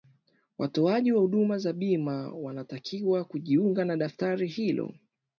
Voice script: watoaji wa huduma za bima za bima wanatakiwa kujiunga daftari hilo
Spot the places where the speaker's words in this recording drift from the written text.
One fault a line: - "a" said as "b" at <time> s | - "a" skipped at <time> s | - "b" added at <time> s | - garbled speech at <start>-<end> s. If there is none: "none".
- "za bima" skipped at 2.3 s
- "na" added at 3.9 s